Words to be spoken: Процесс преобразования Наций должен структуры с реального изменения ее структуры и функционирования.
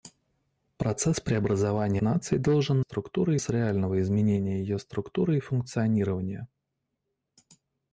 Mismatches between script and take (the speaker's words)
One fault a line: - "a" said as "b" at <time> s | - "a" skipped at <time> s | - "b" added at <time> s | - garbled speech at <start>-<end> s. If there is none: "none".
none